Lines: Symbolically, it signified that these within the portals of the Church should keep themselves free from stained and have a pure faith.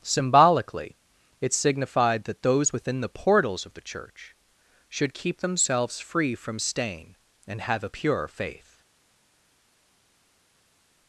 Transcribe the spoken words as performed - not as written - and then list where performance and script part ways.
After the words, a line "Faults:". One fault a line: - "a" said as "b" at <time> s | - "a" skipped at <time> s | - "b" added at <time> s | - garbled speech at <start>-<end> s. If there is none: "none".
Symbolically, it signified that those within the portals of the Church should keep themselves free from stain and have a pure faith.
Faults:
- "these" said as "those" at 2.4 s
- "stained" said as "stain" at 6.6 s